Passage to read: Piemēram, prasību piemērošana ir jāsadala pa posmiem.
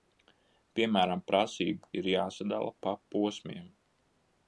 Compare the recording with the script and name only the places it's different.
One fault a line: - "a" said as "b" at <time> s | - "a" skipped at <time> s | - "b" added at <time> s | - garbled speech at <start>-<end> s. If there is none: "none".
- "piemērošana" skipped at 1.9 s